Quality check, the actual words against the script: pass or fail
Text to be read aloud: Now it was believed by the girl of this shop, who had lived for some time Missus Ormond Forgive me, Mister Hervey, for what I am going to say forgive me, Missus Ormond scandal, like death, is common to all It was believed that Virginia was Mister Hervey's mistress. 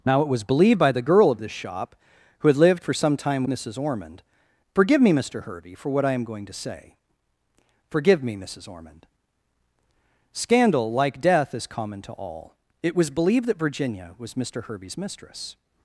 pass